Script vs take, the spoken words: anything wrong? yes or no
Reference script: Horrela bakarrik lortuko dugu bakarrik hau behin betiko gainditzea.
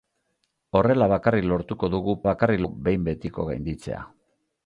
no